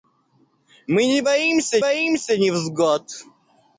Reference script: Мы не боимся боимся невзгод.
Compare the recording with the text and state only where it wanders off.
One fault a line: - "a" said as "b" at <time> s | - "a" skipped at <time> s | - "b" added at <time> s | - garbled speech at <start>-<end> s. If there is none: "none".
none